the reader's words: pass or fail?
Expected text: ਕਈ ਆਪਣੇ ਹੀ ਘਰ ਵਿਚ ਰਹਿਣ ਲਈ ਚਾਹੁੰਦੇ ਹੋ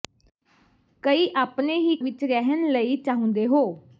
fail